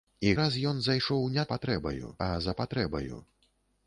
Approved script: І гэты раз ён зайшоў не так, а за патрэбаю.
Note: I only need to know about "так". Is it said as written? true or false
false